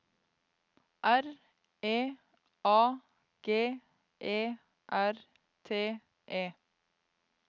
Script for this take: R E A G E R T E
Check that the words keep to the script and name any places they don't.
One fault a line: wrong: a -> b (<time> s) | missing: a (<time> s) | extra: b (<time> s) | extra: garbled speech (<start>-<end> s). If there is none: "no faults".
no faults